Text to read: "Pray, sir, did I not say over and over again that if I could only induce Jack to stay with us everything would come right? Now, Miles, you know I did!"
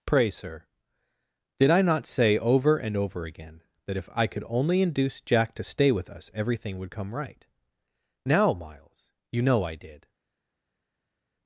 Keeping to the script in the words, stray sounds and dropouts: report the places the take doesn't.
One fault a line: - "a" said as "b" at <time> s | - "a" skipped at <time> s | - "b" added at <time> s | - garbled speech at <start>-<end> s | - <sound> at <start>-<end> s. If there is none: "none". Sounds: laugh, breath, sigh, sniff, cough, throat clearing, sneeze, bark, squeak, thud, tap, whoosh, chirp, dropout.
none